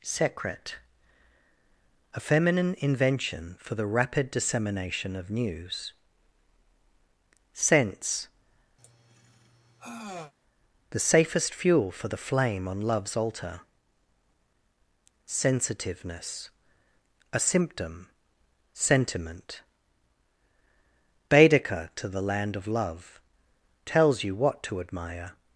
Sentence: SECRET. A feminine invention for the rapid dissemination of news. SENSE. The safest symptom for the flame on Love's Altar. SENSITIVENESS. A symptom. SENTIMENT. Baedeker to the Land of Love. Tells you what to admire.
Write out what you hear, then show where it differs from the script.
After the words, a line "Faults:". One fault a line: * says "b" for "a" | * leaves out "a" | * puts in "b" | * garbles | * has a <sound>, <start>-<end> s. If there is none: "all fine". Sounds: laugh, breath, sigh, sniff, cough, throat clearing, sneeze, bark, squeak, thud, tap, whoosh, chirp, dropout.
SECRET. A feminine invention for the rapid dissemination of news. SENSE. The safest fuel for the flame on Love's Altar. SENSITIVENESS. A symptom. SENTIMENT. Baedeker to the Land of Love. Tells you what to admire.
Faults:
* has a sigh, 8.8-10.3 s
* says "fuel" for "symptom"